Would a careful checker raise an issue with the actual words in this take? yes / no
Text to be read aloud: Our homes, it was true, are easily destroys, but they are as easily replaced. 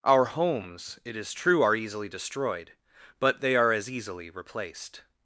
yes